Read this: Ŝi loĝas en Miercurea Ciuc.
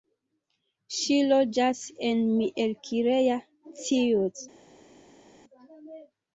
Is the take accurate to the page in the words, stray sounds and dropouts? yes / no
yes